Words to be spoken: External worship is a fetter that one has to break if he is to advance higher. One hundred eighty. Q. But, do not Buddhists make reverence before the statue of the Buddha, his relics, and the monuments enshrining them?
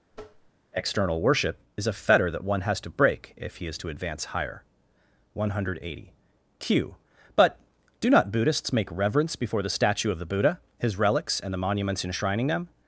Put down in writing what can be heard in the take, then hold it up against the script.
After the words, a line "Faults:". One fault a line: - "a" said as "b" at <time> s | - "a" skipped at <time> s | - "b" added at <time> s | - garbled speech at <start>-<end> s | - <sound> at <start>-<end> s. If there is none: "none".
External worship is a fetter that one has to break if he is to advance higher. One hundred eighty. Q. But, do not Buddhists make reverence before the statue of the Buddha, his relics, and the monuments enshrining them?
Faults:
- tap at 0.1-0.5 s